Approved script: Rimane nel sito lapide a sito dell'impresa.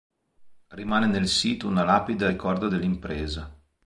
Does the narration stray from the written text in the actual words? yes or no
yes